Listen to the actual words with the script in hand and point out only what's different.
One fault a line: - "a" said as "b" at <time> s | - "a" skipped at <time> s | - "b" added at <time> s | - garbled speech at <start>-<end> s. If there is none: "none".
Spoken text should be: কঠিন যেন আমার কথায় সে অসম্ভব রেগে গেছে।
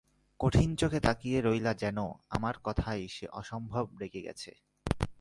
- "চোখে তাকিয়ে রইলা" added at 0.8 s